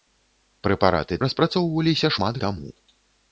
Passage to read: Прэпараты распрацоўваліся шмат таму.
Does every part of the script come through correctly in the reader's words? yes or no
yes